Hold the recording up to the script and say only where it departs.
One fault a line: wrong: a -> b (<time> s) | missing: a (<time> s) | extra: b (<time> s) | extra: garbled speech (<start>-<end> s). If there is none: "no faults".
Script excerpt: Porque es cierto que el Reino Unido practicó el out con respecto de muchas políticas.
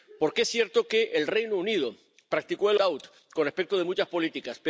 no faults